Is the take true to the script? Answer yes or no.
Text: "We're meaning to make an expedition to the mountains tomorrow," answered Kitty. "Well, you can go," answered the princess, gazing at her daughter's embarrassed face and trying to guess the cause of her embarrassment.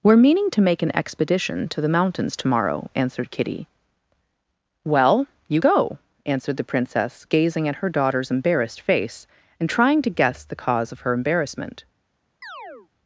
no